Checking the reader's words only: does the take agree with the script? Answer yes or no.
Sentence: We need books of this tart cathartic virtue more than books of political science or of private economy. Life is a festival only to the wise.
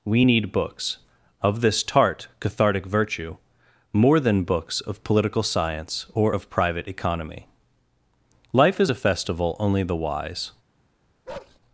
no